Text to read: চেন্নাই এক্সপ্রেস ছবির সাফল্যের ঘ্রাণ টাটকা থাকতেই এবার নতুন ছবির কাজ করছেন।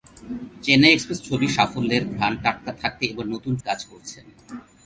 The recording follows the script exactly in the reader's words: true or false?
false